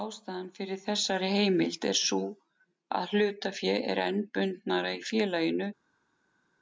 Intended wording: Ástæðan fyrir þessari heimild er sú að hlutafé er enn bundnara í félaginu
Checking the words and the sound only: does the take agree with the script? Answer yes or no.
yes